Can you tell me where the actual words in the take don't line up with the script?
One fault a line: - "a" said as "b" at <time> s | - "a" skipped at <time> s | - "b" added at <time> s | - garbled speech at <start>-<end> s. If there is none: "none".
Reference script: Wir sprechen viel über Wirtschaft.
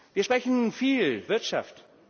- "über" skipped at 1.2 s